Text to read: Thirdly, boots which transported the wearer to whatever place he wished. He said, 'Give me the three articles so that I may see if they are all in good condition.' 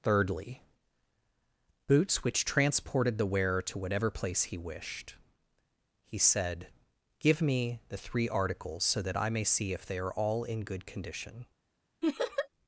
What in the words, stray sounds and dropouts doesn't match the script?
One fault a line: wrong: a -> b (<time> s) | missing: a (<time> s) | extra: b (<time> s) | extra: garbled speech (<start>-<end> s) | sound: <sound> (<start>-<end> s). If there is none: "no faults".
sound: laugh (12.0-12.5 s)